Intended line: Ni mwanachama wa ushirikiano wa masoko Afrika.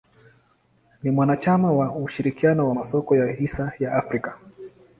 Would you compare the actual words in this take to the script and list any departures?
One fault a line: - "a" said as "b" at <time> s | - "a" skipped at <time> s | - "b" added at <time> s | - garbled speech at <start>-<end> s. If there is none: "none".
- "ya hisa ya" added at 3.2 s